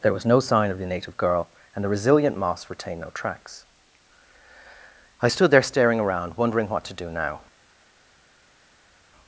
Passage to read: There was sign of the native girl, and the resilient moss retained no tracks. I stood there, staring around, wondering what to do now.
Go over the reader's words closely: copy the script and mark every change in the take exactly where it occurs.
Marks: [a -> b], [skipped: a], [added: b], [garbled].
There was [added: no] sign of the native girl, and the resilient moss retained no tracks. I stood there, staring around, wondering what to do now.